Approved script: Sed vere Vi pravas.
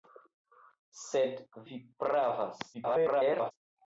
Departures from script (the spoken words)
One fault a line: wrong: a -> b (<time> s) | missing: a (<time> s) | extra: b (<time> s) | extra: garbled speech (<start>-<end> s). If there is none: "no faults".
missing: vere (1.4 s)
extra: garbled speech (2.7-3.5 s)